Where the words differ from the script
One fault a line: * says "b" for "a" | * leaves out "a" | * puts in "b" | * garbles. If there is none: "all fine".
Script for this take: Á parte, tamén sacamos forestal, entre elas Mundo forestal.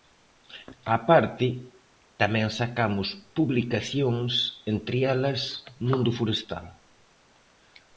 * says "publicacións" for "forestal"